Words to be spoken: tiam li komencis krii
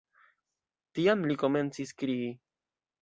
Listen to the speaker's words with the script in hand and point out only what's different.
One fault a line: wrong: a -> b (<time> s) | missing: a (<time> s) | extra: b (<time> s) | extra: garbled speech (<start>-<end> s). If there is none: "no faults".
no faults